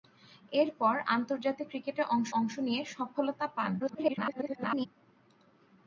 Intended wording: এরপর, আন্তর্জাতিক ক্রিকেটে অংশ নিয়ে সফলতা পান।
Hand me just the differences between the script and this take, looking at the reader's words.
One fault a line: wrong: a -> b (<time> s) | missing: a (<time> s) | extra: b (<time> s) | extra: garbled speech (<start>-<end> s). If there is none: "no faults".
extra: অংশ (2.4 s)
extra: garbled speech (3.8-4.9 s)